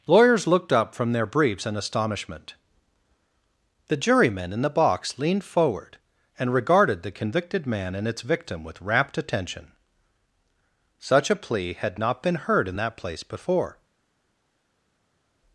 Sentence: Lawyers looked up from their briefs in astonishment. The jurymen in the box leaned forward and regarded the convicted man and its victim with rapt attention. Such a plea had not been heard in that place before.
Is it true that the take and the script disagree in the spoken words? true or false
false